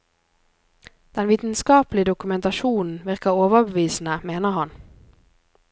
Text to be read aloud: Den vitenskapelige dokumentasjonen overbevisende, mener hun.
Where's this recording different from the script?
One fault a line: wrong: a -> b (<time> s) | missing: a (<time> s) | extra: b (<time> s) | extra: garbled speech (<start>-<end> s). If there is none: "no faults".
extra: virker (3.0 s)
wrong: hun -> han (4.5 s)